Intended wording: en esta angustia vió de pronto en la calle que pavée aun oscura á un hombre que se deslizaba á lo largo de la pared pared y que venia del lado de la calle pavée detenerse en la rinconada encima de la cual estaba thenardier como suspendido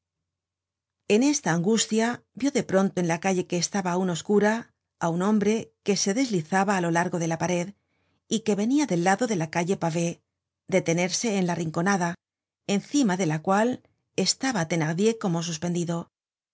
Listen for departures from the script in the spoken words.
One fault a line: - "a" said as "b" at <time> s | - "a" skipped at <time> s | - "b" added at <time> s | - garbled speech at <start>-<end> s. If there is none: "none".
- "pavée" said as "estaba" at 3.6 s
- "pared" skipped at 7.7 s